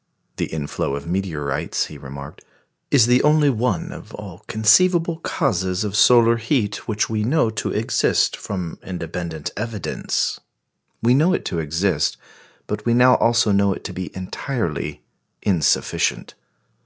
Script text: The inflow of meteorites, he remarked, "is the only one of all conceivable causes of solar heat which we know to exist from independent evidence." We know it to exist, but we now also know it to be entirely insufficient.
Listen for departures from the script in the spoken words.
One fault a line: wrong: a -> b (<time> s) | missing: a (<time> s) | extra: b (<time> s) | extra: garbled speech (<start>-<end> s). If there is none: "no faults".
no faults